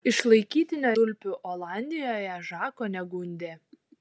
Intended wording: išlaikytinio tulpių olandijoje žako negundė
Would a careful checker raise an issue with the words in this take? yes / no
no